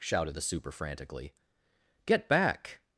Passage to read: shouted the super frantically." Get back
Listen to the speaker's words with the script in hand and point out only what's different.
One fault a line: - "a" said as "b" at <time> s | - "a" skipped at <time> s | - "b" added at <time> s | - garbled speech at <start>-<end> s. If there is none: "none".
none